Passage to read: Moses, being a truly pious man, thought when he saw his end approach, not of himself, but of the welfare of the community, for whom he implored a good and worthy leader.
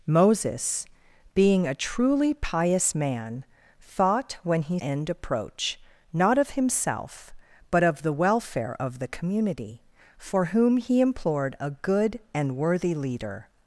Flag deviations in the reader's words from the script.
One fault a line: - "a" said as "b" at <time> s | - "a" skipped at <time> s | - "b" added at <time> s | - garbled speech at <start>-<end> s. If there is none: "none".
- "saw his" skipped at 4.8 s